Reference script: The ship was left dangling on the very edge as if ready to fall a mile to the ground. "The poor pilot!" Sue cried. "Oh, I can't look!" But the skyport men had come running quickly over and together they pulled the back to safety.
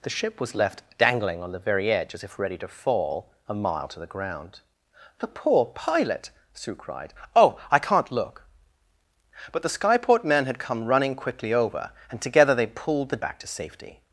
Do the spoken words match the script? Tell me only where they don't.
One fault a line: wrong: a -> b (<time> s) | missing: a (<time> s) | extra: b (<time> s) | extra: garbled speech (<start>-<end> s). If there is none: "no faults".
no faults